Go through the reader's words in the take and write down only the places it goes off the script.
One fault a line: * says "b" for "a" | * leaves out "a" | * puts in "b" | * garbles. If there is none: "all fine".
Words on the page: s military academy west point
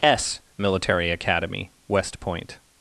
all fine